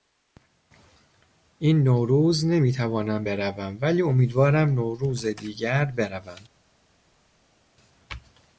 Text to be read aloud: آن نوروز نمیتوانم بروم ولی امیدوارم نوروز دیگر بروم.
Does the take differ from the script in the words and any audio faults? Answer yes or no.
yes